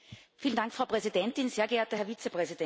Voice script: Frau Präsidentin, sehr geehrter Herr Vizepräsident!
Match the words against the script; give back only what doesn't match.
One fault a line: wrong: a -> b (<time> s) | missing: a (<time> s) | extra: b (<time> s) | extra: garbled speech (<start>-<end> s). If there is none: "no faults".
no faults